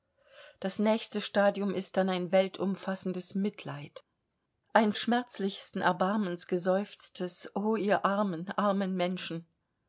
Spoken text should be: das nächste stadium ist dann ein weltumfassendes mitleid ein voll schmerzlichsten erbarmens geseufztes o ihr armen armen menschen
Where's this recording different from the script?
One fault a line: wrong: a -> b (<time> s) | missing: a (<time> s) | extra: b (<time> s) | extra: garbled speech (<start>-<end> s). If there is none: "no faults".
missing: voll (4.9 s)